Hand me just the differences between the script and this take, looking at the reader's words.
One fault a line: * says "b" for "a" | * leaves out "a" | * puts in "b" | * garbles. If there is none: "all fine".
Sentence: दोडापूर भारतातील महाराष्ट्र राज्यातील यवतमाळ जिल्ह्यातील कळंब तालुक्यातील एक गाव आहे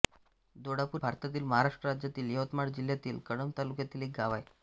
all fine